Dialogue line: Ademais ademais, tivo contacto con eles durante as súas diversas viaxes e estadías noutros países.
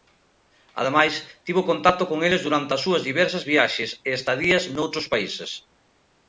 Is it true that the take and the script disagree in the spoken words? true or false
true